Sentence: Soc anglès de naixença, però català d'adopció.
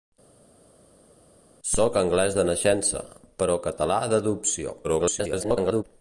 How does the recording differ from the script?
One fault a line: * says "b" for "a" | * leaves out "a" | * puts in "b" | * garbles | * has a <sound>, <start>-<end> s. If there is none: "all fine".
* garbles